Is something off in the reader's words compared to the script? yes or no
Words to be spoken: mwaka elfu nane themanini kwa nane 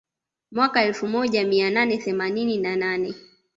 yes